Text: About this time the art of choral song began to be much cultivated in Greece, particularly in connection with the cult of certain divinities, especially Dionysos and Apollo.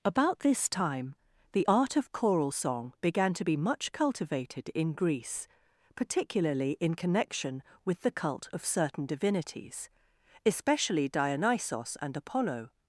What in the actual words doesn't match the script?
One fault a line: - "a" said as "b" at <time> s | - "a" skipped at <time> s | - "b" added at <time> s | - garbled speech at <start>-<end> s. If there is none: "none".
none